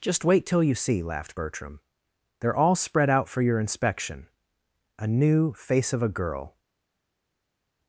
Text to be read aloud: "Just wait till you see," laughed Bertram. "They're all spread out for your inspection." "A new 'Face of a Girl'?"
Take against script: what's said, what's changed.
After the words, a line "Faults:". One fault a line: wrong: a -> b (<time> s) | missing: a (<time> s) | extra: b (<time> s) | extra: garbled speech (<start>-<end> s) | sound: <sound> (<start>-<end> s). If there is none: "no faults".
"Just wait till you see," laughed Bertram. "They're all spread out for your inspection." "A new 'Face of a Girl'?"
Faults:
no faults